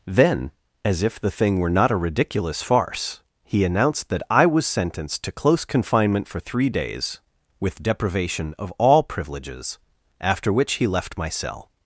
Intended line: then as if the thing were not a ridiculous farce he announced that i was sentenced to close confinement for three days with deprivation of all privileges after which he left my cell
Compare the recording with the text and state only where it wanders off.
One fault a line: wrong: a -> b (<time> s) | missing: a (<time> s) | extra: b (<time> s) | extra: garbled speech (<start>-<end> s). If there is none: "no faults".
no faults